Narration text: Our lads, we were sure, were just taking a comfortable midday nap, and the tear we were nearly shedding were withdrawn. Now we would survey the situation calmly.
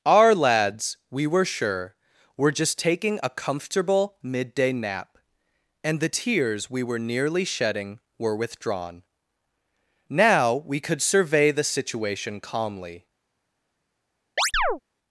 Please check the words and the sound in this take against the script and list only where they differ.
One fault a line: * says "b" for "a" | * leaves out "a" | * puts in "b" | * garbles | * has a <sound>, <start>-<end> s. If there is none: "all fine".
* says "tears" for "tear"
* says "could" for "would"
* has a chirp, 14.4-14.8 s